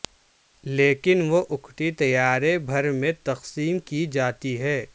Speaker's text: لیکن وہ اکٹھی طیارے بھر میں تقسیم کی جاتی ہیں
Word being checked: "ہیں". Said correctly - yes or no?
yes